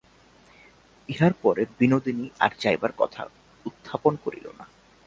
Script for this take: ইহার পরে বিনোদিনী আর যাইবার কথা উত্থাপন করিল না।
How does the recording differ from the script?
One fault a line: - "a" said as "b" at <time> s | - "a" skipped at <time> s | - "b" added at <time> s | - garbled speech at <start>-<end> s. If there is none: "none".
none